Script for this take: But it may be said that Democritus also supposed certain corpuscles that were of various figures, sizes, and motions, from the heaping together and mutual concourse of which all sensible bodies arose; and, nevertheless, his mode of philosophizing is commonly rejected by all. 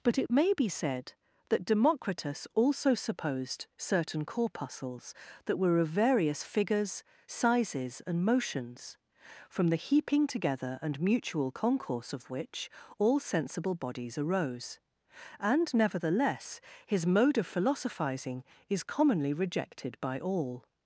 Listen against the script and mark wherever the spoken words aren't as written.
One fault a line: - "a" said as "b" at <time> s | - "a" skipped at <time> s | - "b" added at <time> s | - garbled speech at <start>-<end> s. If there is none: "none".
none